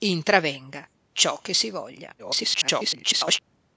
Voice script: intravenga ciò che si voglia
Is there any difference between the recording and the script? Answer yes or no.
yes